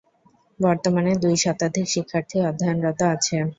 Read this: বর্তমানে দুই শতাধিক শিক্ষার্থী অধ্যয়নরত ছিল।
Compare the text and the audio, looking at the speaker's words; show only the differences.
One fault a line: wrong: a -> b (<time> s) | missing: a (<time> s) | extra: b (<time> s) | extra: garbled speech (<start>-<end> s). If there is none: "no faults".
wrong: ছিল -> আছে (3.1 s)